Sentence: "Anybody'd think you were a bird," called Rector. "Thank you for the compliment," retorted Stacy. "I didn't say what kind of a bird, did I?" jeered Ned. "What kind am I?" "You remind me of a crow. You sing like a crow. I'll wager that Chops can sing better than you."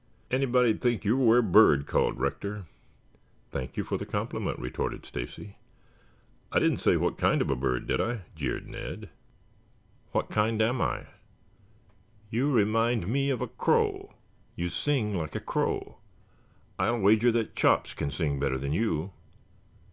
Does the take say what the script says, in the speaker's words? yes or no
yes